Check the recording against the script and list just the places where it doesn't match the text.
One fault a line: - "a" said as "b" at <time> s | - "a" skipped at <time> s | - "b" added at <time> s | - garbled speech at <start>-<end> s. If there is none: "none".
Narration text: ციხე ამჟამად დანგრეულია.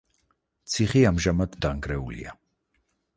none